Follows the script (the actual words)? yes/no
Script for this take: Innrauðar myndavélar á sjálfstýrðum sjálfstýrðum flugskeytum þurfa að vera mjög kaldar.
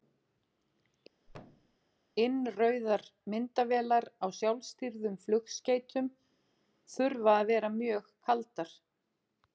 no